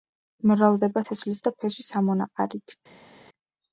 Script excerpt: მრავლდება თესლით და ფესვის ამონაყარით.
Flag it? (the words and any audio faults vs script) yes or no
no